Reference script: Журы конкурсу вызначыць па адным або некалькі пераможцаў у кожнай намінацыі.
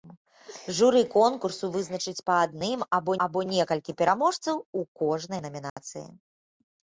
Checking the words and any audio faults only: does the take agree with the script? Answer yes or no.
no